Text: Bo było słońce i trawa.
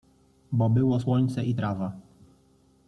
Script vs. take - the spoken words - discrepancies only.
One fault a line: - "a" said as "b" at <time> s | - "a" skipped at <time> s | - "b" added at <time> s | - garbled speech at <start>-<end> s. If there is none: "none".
none